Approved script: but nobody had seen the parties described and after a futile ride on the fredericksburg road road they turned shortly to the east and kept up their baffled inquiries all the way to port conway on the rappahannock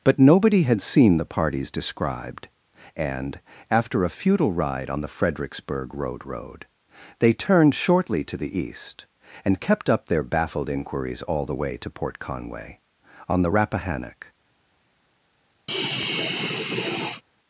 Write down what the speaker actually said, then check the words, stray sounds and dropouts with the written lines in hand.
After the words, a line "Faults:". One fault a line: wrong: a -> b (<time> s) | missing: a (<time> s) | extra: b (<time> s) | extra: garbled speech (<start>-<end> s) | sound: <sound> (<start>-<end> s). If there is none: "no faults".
but nobody had seen the parties described and after a futile ride on the fredericksburg road road they turned shortly to the east and kept up their baffled inquiries all the way to port conway on the rappahannock
Faults:
sound: sigh (15.7-17.2 s)